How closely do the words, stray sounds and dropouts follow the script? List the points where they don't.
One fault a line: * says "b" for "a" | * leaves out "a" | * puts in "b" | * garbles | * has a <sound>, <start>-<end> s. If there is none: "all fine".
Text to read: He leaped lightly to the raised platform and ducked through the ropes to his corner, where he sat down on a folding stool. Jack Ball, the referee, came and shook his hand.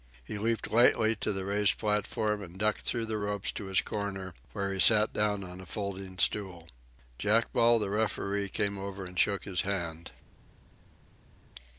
* puts in "over"